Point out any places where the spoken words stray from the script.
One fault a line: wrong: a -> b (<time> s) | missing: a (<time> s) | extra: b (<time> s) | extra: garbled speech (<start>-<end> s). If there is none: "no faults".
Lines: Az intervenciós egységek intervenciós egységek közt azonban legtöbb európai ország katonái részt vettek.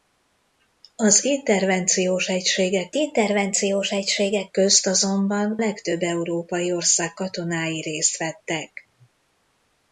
no faults